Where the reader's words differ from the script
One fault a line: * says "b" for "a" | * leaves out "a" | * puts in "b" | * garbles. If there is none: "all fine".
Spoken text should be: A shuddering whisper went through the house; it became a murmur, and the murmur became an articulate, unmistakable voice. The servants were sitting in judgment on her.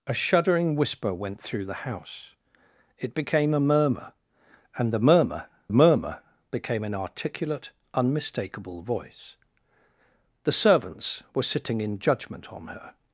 * puts in "murmur"